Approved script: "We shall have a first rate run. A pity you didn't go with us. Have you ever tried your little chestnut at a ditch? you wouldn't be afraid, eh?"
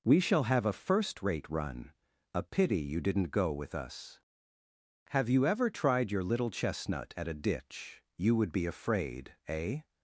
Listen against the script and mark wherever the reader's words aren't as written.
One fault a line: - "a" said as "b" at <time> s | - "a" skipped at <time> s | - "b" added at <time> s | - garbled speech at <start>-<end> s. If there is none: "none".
- "wouldn't" said as "would" at 8.4 s